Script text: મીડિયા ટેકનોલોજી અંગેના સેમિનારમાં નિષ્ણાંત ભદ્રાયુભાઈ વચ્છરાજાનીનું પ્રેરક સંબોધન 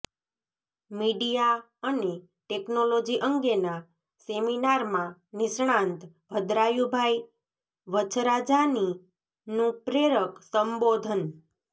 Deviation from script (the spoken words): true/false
true